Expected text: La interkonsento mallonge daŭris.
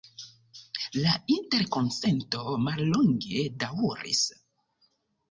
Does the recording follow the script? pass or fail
pass